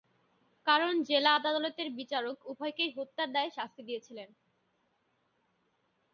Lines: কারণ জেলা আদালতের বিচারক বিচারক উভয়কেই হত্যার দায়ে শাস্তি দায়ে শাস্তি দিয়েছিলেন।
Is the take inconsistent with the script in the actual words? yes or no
yes